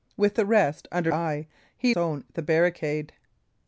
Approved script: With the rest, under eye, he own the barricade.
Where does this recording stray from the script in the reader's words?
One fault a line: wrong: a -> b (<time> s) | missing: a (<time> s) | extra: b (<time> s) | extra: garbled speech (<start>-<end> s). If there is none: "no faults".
no faults